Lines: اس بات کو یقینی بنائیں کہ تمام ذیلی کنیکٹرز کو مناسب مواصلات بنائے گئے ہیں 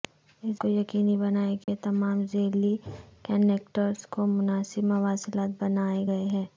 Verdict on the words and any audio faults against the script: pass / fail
fail